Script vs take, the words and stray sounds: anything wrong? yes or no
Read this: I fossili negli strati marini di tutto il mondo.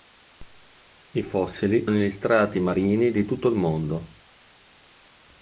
no